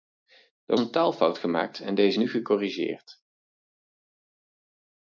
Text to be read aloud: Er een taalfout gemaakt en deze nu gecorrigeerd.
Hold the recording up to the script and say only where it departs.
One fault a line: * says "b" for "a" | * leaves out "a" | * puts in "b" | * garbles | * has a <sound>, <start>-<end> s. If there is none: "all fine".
all fine